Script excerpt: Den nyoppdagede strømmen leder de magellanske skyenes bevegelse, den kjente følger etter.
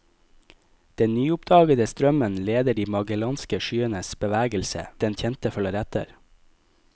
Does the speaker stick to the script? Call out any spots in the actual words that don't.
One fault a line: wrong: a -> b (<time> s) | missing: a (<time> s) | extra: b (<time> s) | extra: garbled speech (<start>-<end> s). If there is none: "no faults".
no faults